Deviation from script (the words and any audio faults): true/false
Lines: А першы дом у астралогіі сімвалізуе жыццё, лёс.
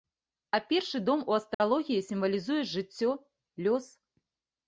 true